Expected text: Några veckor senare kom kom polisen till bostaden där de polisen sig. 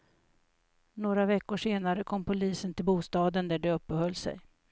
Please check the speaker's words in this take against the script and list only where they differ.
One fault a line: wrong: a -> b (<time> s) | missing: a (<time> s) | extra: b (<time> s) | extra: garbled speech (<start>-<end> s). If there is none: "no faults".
missing: kom (2.2 s)
wrong: polisen -> uppehöll (3.7 s)